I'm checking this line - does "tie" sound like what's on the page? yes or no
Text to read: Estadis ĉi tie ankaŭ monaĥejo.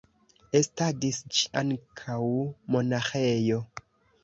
no